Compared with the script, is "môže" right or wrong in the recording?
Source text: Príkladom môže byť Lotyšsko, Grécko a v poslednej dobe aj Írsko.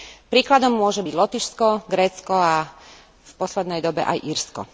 right